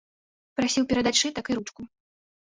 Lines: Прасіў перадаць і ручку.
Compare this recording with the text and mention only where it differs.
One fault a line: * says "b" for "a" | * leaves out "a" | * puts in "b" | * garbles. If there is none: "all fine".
* puts in "сшытак"